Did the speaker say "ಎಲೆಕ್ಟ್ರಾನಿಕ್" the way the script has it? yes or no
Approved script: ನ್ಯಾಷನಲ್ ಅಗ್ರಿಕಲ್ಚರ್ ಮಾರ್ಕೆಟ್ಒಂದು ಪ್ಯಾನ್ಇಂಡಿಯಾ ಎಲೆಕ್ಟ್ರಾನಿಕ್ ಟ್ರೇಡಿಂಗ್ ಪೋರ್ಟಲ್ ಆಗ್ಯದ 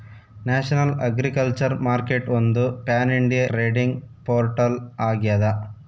no